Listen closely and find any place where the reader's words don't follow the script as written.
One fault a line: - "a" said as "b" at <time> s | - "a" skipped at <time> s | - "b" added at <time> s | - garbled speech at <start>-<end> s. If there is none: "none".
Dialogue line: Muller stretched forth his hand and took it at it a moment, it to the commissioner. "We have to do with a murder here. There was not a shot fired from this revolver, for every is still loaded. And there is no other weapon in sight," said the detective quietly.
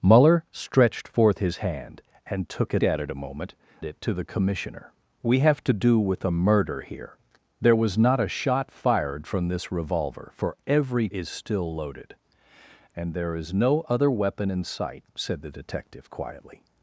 none